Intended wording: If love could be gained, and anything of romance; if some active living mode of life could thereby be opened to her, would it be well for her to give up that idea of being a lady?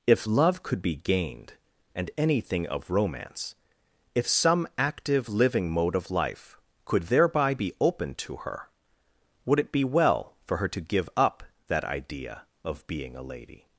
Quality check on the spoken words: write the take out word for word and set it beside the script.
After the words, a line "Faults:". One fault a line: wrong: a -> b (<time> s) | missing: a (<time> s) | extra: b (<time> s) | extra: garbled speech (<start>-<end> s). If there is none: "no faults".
If love could be gained, and anything of romance; if some active living mode of life could thereby be opened to her, would it be well for her to give up that idea of being a lady?
Faults:
no faults